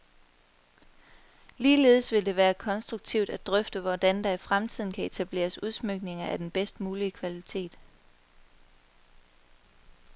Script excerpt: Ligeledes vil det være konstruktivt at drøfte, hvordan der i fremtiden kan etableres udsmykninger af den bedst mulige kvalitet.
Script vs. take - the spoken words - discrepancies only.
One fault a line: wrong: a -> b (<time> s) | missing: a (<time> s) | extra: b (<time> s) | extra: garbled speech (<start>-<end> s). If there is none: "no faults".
no faults